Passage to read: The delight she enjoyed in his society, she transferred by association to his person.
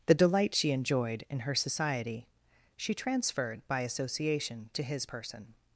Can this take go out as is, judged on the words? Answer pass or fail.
fail